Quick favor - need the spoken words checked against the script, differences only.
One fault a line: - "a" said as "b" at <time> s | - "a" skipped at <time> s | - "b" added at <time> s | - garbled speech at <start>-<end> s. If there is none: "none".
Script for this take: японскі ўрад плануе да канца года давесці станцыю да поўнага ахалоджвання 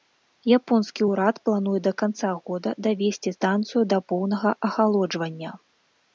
none